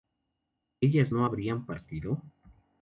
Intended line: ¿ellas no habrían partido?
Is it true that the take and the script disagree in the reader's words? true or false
false